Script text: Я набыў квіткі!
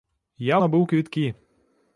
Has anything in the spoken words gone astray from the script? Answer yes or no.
no